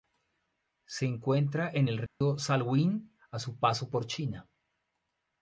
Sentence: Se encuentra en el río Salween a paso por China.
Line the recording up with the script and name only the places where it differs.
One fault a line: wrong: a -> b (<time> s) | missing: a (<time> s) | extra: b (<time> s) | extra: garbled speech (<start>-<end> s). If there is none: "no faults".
extra: su (3.4 s)